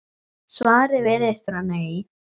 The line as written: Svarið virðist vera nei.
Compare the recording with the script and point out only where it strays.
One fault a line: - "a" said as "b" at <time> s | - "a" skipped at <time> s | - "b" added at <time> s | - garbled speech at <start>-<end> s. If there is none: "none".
none